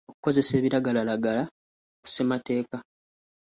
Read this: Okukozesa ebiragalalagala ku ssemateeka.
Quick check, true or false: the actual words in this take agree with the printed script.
true